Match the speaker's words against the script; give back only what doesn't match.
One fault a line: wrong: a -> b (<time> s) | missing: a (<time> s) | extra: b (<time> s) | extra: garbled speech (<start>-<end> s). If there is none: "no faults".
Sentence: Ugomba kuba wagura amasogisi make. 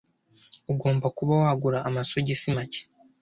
no faults